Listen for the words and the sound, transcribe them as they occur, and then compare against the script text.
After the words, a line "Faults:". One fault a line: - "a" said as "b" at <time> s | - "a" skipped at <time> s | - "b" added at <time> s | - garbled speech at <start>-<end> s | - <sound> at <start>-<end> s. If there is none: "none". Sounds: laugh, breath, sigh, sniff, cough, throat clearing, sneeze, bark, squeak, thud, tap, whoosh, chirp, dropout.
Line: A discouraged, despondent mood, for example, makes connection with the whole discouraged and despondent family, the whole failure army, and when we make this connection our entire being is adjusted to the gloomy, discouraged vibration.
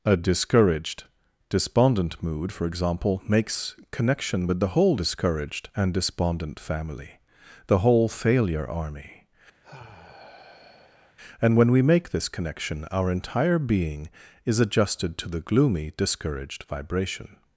A discouraged, despondent mood, for example, makes connection with the whole discouraged and despondent family, the whole failure army, and when we make this connection our entire being is adjusted to the gloomy, discouraged vibration.
Faults:
- sigh at 9.6-11.2 s